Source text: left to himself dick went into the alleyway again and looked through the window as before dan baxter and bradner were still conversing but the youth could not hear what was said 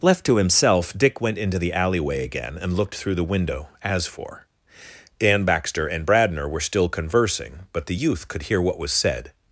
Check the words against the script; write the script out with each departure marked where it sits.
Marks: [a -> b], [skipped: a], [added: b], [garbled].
left to himself dick went into the alleyway again and looked through the window as [before -> for] dan baxter and bradner were still conversing but the youth could [skipped: not] hear what was said